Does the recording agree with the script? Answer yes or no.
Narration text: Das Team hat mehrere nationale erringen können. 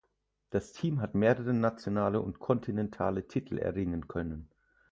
no